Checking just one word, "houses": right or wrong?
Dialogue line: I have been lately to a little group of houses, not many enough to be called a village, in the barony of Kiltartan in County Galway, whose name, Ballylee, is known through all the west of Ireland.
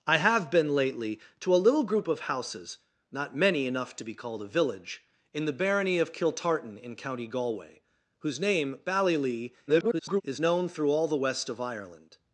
right